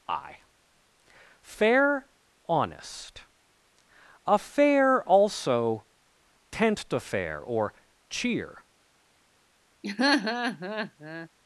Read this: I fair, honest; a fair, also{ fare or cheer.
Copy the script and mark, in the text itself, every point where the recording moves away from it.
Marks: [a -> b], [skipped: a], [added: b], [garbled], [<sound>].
I fair, honest; a fair, also{ [fare -> tent to fair] or cheer. [laugh]